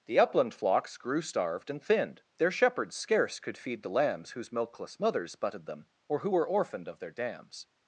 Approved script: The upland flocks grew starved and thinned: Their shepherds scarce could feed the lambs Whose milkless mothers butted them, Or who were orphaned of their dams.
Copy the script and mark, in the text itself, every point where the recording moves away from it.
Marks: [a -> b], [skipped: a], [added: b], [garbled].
The upland flocks grew starved and thinned: Their shepherds scarce could feed the lambs Whose milkless mothers butted them, Or who were orphaned of their dams.